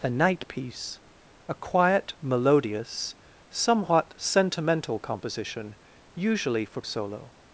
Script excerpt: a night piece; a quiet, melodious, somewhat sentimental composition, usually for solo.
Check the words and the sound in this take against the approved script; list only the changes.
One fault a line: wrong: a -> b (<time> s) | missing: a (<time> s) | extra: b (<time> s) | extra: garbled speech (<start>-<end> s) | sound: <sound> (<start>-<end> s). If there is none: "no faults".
no faults